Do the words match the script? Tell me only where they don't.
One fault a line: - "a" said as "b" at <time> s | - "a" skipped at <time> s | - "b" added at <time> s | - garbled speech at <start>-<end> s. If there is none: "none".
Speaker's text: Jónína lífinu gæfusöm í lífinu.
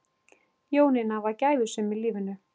- "lífinu" said as "var" at 1.3 s